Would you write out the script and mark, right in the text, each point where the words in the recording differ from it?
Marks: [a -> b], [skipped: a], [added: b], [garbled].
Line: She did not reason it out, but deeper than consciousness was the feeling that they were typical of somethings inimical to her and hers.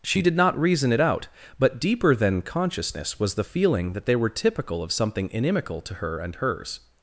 She did not reason it out, but deeper than consciousness was the feeling that they were typical of [somethings -> something] inimical to her and hers.